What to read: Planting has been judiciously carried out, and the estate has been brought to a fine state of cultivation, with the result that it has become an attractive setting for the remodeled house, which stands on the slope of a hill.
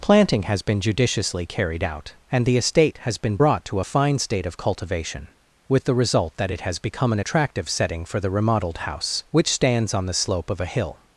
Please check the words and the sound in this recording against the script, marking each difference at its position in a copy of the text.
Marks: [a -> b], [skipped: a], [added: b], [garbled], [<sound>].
Planting has been judiciously carried out, and the estate has been brought to a fine state of cultivation, with the result that it has become an attractive setting for the remodeled house, which stands on the slope of a hill.